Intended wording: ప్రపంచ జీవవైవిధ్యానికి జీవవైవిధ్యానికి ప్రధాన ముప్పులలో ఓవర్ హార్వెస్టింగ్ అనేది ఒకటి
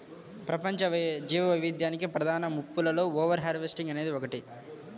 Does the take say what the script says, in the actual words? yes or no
no